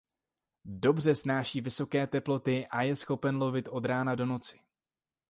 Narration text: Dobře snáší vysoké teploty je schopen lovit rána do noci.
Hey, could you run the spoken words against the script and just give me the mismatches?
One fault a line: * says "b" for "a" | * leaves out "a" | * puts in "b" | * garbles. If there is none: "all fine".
* puts in "a"
* puts in "od"